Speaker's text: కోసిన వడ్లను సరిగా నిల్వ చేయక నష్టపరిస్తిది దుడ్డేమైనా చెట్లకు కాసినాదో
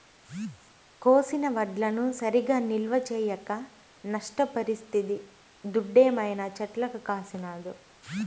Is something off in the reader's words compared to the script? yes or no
no